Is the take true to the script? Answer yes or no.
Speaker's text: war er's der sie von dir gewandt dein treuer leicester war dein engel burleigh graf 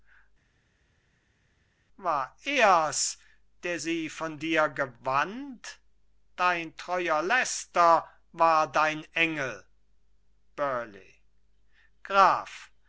yes